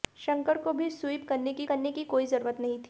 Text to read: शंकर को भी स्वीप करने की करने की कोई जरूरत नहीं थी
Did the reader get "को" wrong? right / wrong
right